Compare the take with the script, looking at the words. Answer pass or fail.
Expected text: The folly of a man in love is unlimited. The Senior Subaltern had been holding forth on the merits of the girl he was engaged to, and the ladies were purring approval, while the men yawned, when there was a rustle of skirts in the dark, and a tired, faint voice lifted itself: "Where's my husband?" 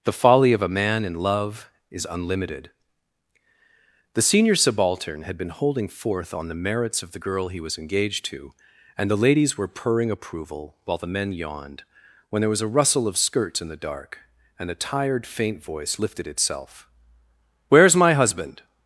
pass